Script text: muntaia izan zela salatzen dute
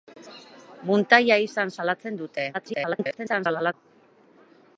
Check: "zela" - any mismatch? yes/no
yes